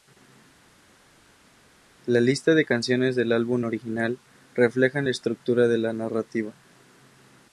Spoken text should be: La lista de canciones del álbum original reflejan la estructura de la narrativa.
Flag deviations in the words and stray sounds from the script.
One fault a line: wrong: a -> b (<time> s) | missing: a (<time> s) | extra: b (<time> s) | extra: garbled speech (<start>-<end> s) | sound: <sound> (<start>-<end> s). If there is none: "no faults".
no faults